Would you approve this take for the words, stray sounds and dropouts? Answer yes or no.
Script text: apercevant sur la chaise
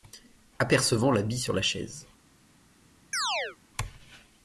no